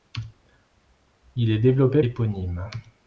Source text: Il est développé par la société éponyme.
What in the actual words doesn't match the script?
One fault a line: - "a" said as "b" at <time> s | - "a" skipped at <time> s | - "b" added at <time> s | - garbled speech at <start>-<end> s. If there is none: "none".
- "par la société" skipped at 2.0 s